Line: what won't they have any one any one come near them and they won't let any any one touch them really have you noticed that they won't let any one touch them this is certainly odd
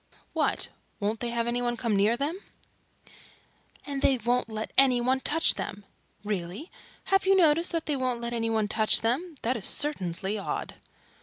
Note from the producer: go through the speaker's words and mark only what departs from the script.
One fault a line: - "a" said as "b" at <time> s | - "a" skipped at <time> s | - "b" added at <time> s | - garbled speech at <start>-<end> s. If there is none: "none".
- "any one" skipped at 1.8 s
- "any" skipped at 5.0 s
- "this" said as "that" at 9.4 s